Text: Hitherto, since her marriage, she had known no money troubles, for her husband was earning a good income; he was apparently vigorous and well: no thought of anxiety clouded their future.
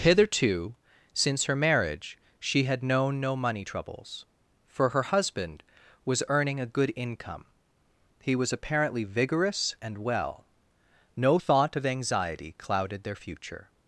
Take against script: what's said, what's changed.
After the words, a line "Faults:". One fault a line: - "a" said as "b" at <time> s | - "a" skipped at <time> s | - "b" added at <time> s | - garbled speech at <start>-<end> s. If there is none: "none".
Hitherto, since her marriage, she had known no money troubles, for her husband was earning a good income; he was apparently vigorous and well: no thought of anxiety clouded their future.
Faults:
none